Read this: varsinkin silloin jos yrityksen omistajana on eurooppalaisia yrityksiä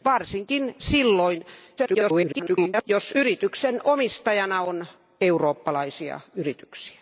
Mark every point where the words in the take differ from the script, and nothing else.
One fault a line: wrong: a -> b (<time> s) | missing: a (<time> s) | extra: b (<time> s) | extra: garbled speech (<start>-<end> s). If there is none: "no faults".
extra: garbled speech (1.8-2.8 s)